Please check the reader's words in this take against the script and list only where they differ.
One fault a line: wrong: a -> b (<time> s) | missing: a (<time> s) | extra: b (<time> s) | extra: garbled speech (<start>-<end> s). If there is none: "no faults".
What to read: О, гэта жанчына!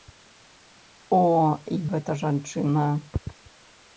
no faults